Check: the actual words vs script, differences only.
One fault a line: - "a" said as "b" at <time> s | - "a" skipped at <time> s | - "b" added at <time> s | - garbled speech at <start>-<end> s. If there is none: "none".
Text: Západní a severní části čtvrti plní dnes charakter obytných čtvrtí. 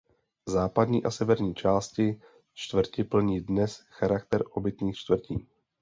none